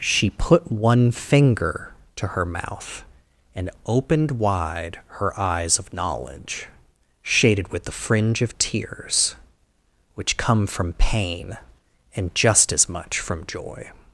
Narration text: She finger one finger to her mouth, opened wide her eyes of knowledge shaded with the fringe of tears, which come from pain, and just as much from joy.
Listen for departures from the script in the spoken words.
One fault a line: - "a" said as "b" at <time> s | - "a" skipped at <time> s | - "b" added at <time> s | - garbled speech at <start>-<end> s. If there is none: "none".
- "finger" said as "put" at 0.3 s
- "and" added at 3.5 s